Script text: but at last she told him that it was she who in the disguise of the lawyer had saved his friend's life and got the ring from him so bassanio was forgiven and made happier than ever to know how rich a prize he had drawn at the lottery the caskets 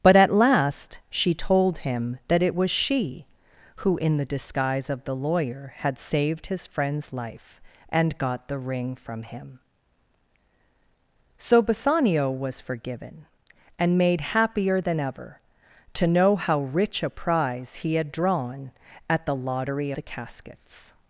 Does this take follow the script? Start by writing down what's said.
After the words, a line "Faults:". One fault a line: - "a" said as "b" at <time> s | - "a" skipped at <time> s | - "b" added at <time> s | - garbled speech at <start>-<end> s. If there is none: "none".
but at last she told him that it was she who in the disguise of the lawyer had saved his friend's life and got the ring from him so bassanio was forgiven and made happier than ever to know how rich a prize he had drawn at the lottery the caskets
Faults:
none